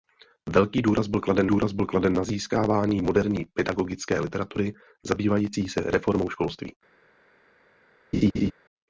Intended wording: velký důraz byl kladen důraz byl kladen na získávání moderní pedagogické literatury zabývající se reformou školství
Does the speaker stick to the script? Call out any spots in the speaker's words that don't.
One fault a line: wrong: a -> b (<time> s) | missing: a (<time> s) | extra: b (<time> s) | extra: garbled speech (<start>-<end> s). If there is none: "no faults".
no faults